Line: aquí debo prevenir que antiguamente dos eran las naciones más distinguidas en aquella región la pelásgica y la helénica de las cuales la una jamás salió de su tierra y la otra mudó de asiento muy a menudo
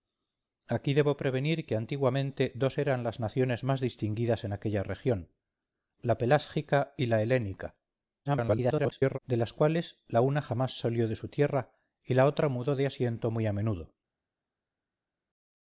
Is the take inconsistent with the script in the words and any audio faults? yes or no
yes